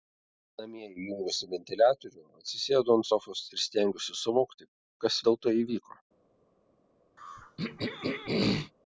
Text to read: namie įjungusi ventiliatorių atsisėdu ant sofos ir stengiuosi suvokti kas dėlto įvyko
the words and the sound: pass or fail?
fail